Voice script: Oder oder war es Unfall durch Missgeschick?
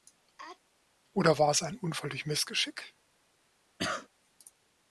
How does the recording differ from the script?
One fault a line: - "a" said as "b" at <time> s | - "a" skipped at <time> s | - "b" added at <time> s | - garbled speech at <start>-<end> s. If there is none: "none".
- "oder" skipped at 1.4 s
- "ein" added at 1.6 s